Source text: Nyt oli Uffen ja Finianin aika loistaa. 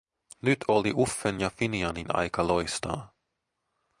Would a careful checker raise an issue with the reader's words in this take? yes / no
no